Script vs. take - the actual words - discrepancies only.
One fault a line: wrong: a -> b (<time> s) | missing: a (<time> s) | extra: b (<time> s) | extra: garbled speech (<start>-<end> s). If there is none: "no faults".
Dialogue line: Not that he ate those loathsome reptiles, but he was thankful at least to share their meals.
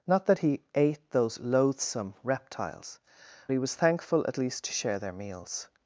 missing: but (3.0 s)